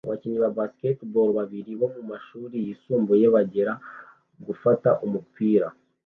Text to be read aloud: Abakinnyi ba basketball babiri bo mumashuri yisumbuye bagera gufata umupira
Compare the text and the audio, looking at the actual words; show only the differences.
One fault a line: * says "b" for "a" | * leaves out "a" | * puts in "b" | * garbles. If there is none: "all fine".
all fine